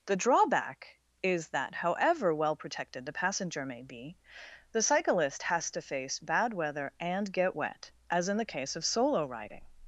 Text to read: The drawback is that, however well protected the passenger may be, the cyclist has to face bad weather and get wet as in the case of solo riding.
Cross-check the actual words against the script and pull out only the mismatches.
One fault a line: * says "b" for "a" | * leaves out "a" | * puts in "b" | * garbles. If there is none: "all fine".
all fine